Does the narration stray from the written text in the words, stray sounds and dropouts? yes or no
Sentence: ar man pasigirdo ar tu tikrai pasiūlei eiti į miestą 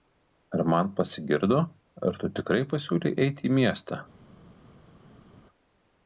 no